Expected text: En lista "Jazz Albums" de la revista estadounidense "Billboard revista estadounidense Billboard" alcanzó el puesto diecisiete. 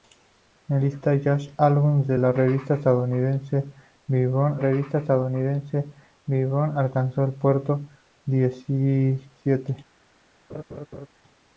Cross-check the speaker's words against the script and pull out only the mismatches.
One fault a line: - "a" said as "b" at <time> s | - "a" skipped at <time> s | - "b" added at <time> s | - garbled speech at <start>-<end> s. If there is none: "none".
none